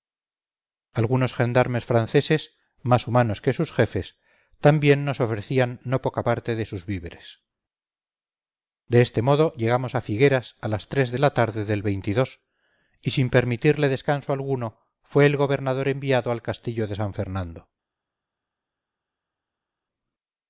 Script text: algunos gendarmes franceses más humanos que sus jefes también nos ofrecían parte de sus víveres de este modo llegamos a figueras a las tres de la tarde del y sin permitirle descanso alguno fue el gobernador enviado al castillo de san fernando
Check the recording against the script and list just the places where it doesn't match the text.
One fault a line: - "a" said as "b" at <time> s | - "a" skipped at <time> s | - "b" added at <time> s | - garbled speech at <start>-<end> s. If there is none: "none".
- "no poca" added at 5.8 s